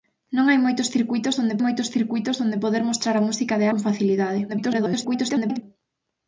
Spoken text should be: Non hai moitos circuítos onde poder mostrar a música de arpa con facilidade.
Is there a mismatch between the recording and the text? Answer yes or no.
yes